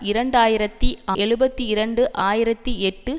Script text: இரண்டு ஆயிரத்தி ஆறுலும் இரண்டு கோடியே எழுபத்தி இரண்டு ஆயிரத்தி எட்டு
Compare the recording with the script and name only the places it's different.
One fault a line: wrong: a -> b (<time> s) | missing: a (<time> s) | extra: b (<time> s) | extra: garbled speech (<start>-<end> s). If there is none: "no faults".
missing: ஆறுலும் இரண்டு கோடியே (0.9 s)